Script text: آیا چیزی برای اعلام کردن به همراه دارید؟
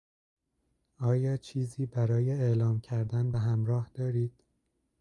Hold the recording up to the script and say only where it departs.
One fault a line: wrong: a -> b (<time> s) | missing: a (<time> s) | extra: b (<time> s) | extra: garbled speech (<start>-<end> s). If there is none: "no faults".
no faults